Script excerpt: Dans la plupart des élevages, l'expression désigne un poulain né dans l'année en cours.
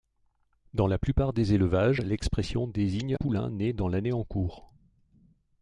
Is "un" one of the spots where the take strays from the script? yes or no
yes